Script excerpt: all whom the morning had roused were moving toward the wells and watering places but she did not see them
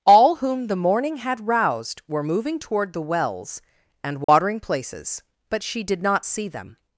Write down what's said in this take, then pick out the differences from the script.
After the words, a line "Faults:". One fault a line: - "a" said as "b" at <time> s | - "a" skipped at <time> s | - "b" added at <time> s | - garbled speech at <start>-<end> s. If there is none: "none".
all whom the morning had roused were moving toward the wells and watering places but she did not see them
Faults:
none